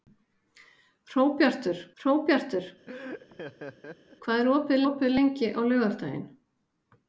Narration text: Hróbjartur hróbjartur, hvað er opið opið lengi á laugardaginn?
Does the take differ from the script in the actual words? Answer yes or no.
no